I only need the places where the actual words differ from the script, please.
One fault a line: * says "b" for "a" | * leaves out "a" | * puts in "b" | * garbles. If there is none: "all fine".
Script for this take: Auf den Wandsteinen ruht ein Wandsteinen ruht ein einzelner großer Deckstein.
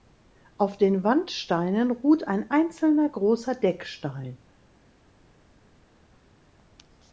* leaves out "Wandsteinen ruht ein"